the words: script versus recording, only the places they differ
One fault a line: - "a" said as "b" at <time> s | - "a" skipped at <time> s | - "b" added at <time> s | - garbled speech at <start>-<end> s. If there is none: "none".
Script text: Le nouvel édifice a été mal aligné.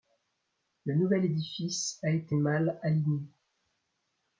none